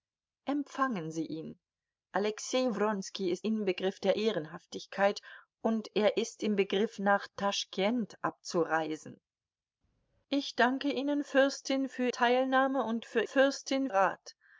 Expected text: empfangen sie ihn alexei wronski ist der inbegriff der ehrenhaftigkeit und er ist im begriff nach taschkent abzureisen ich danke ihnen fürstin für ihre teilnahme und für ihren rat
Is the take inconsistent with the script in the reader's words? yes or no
yes